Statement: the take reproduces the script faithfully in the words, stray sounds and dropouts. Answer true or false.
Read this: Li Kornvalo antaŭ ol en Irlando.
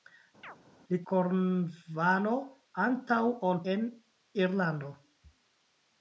false